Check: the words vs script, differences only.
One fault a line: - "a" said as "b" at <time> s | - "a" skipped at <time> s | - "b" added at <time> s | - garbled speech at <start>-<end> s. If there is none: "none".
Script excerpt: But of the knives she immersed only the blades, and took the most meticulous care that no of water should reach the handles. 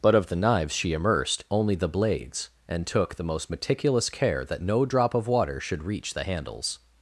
- "drop" added at 4.9 s